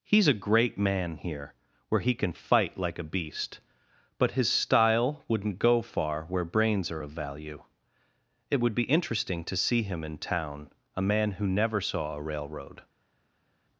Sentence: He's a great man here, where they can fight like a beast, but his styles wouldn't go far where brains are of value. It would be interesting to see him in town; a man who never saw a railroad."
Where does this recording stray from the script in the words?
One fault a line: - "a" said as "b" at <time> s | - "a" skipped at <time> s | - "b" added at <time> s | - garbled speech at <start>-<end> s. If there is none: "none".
- "they" said as "he" at 2.0 s
- "styles" said as "style" at 4.5 s